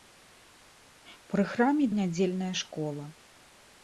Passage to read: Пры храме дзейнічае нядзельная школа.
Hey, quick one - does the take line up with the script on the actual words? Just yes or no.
no